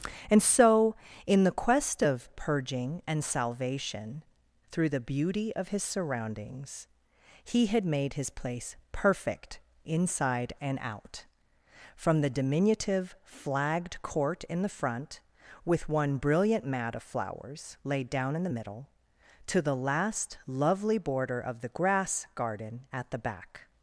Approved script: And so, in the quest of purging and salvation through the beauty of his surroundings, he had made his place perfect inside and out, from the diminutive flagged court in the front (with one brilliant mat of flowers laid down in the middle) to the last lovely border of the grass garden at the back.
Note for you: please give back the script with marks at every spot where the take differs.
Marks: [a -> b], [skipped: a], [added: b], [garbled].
And so, in the quest of purging and salvation through the beauty of his surroundings, he had made his place perfect inside and out, from the diminutive flagged court in the front (with one brilliant mat of flowers laid down in the middle) to the last lovely border of the grass garden at the back.